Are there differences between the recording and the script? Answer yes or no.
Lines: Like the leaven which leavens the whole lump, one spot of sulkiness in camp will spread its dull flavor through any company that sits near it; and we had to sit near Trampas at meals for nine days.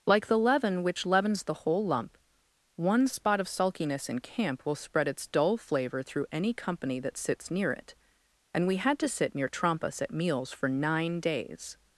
no